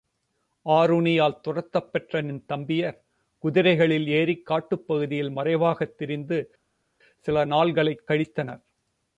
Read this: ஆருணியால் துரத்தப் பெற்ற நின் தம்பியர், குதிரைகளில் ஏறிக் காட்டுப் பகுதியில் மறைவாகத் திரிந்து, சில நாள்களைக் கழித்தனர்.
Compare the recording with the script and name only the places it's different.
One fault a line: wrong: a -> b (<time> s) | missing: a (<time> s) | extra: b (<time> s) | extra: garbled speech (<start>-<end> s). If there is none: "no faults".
no faults